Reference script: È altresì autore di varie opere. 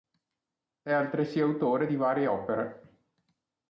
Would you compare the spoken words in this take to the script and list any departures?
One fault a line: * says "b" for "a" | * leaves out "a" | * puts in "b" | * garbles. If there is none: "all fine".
all fine